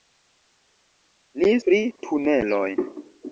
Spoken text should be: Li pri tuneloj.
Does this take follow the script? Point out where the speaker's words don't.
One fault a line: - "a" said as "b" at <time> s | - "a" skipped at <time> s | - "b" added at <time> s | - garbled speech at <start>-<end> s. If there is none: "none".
none